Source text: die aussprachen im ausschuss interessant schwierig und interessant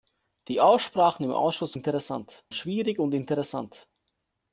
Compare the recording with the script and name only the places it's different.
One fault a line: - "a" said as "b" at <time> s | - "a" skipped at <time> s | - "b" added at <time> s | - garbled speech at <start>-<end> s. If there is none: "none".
none